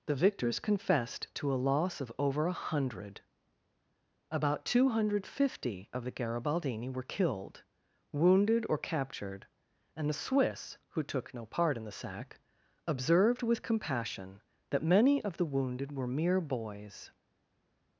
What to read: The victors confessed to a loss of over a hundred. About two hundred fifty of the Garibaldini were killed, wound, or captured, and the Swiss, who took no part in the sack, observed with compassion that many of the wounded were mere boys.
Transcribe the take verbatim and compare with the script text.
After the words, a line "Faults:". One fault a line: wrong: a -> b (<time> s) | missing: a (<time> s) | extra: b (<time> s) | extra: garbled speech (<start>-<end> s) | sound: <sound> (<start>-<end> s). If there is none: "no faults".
The victors confessed to a loss of over a hundred. About two hundred fifty of the Garibaldini were killed, wounded, or captured, and the Swiss, who took no part in the sack, observed with compassion that many of the wounded were mere boys.
Faults:
wrong: wound -> wounded (8.1 s)